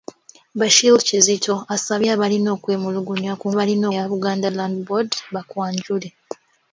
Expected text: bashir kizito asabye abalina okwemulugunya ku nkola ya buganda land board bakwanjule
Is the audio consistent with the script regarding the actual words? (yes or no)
no